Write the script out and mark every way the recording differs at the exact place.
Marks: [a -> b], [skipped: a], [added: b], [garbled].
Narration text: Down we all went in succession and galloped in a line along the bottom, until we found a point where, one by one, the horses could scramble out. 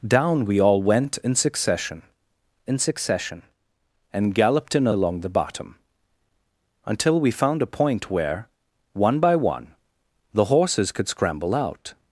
Down we all went in succession [added: in succession] and galloped in a [skipped: line] along the bottom, until we found a point where, one by one, the horses could scramble out.